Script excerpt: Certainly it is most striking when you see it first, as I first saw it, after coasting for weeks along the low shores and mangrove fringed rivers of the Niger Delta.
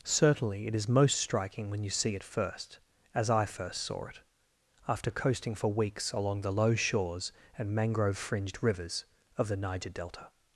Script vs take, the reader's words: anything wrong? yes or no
no